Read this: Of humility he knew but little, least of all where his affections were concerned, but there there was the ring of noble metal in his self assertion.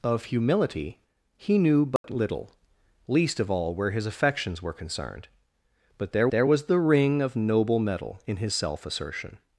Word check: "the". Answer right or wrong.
right